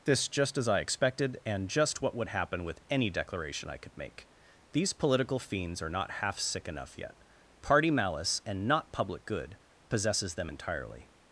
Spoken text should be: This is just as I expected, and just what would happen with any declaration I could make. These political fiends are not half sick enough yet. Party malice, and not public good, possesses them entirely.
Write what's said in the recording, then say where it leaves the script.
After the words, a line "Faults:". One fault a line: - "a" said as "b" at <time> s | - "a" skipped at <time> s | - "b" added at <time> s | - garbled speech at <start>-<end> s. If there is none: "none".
This just as I expected, and just what would happen with any declaration I could make. These political fiends are not half sick enough yet. Party malice, and not public good, possesses them entirely.
Faults:
- "is" skipped at 0.3 s